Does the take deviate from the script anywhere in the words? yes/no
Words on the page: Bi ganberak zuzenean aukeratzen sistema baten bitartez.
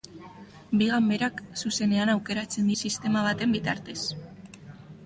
no